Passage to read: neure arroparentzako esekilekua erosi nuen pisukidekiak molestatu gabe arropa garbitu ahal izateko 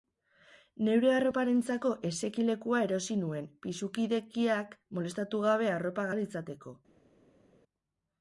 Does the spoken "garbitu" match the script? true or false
false